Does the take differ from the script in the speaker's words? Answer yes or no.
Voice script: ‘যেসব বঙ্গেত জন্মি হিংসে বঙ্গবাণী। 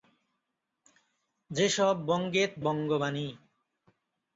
yes